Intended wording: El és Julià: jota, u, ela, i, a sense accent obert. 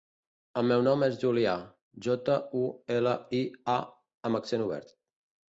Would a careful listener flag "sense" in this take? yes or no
yes